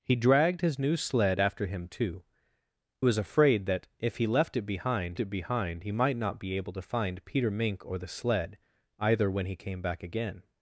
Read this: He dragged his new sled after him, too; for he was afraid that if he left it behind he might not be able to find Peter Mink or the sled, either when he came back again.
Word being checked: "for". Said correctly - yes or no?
no